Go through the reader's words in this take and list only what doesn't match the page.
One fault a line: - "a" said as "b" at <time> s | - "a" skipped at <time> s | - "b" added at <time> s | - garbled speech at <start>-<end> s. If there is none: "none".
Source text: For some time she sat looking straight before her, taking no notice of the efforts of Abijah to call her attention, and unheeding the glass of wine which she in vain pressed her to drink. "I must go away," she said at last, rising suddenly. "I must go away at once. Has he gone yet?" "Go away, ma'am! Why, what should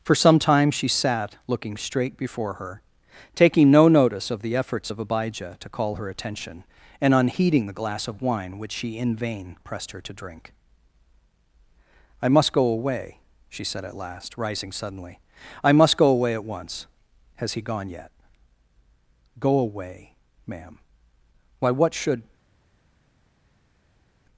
none